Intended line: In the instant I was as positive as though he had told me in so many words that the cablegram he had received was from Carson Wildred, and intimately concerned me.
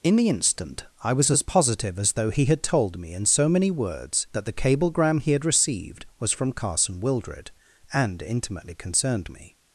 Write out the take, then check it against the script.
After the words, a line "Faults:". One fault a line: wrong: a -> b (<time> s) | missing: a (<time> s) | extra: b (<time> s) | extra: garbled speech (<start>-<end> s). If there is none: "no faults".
In the instant I was as positive as though he had told me in so many words that the cablegram he had received was from Carson Wildred, and intimately concerned me.
Faults:
no faults